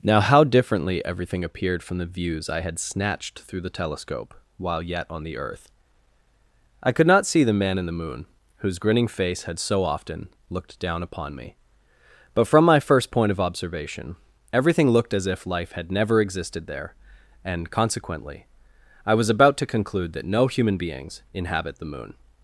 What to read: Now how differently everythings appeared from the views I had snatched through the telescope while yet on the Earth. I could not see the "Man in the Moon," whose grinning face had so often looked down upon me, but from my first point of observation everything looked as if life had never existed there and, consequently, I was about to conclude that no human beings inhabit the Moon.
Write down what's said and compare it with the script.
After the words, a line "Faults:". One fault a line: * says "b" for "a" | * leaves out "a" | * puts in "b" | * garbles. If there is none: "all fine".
Now how differently everything appeared from the views I had snatched through the telescope while yet on the Earth. I could not see the "Man in the Moon," whose grinning face had so often looked down upon me, but from my first point of observation everything looked as if life had never existed there and, consequently, I was about to conclude that no human beings inhabit the Moon.
Faults:
* says "everything" for "everythings"